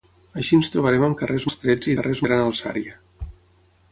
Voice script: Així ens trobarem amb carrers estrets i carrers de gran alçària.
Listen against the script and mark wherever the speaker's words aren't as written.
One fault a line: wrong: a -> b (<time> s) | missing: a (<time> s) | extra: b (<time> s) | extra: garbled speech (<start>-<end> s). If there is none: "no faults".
no faults